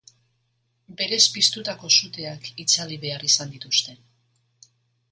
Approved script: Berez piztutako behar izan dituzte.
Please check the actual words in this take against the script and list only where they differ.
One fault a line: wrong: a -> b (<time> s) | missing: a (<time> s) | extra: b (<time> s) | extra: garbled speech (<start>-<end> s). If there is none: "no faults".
extra: suteak itzali (2.0 s)